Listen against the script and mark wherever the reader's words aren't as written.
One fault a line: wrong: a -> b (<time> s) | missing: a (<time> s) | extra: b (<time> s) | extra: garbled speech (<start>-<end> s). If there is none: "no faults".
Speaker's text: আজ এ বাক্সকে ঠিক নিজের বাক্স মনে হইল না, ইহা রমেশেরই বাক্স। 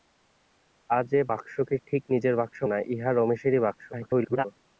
missing: মনে হইল (2.6 s)
extra: garbled speech (3.9-4.5 s)